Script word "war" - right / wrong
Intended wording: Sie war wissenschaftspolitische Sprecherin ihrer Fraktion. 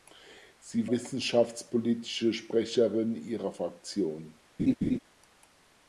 wrong